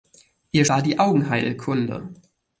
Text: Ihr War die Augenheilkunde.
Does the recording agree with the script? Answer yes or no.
yes